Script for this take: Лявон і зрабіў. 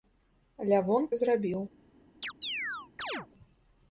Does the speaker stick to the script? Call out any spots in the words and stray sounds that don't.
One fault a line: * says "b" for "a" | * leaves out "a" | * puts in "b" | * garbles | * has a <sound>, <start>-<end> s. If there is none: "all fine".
* has a chirp, 2.2-3.3 s